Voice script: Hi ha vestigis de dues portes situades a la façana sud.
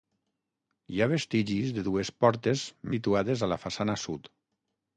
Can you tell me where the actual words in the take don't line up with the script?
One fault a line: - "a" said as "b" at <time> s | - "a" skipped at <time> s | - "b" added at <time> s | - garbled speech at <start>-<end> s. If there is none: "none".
none